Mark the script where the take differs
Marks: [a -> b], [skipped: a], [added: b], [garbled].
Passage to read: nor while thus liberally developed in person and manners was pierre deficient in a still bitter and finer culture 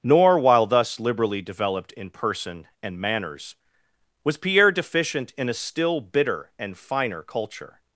nor while thus liberally developed in person and manners was pierre deficient in a still bitter and finer culture